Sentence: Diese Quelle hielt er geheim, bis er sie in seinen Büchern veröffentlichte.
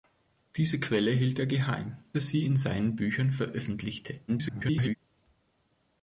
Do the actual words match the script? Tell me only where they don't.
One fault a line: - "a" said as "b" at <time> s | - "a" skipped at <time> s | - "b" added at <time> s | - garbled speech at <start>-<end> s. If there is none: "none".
- "bis" skipped at 2.0 s
- garbled speech at 4.3-5.0 s